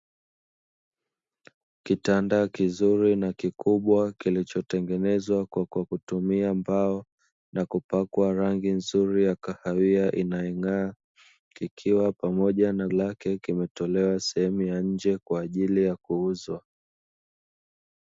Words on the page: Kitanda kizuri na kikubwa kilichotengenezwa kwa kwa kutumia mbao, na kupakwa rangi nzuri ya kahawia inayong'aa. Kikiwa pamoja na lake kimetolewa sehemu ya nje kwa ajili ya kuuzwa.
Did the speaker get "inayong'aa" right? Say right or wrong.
right